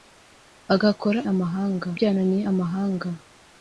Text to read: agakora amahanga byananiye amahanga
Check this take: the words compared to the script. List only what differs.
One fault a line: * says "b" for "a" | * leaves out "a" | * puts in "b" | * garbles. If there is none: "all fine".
all fine